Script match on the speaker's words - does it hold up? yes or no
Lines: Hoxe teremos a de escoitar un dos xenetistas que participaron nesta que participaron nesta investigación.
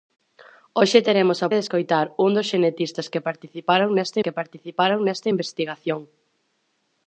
yes